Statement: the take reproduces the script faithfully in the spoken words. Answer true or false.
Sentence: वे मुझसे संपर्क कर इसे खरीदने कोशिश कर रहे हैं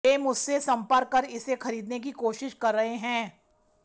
false